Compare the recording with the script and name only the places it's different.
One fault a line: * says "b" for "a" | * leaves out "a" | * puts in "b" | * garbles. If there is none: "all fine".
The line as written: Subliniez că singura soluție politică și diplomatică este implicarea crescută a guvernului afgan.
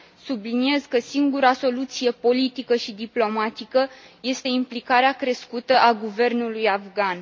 all fine